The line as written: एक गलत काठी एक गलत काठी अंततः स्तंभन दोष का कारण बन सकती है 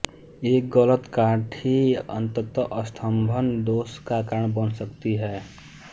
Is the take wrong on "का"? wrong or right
right